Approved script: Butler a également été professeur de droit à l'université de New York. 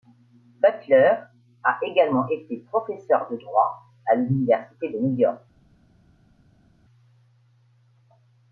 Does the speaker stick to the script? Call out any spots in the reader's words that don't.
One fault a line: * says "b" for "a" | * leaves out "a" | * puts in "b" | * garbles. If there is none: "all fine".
all fine